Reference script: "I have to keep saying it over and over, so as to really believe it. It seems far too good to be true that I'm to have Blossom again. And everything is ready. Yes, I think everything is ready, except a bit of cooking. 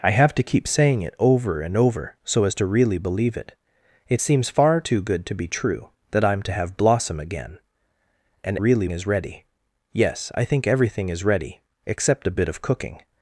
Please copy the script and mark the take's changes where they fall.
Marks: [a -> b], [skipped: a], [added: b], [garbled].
"I have to keep saying it over and over, so as to really believe it. It seems far too good to be true that I'm to have Blossom again. And [everything -> really] is ready. Yes, I think everything is ready, except a bit of cooking.